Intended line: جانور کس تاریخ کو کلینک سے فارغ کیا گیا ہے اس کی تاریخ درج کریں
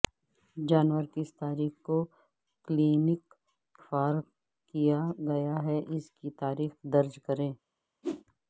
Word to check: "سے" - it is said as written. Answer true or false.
false